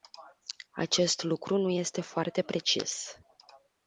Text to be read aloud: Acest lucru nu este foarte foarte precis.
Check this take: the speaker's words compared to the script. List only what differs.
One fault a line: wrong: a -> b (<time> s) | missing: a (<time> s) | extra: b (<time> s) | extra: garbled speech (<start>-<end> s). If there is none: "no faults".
missing: foarte (2.4 s)